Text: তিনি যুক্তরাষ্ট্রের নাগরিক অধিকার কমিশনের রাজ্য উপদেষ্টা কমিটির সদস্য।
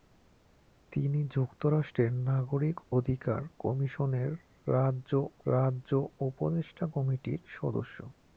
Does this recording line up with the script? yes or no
no